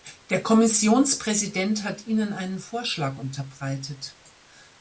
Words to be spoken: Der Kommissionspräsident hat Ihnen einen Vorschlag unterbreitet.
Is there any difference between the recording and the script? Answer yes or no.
no